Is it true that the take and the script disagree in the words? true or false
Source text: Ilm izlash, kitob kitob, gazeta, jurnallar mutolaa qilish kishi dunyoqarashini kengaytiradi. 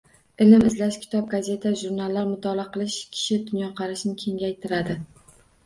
true